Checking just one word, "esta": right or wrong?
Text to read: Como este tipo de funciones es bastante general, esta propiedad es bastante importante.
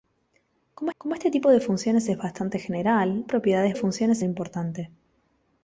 wrong